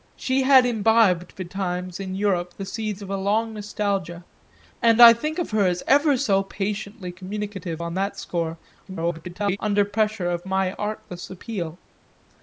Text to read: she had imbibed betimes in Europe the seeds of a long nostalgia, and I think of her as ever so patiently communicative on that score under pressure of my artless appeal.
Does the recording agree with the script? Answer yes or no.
no